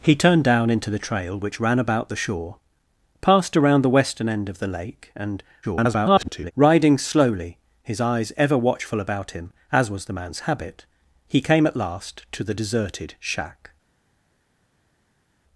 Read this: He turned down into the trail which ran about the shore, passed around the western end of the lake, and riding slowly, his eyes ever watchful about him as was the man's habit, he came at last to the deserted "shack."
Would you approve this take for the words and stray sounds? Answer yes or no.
no